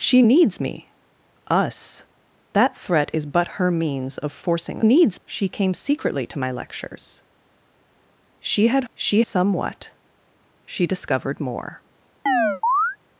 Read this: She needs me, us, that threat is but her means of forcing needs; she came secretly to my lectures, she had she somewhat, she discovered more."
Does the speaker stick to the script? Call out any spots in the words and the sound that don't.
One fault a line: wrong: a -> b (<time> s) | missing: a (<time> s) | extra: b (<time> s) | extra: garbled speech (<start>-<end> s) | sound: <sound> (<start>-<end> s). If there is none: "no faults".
sound: chirp (12.3-13.0 s)